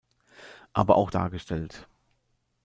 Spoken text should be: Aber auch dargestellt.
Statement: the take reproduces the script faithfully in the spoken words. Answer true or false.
true